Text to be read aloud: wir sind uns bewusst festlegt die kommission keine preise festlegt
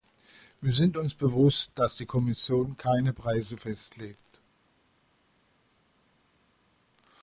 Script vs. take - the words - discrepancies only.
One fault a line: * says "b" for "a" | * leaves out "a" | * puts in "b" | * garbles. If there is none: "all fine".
* says "dass" for "festlegt"